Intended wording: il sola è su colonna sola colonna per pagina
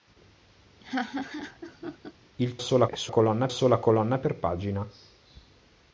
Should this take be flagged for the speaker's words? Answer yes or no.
no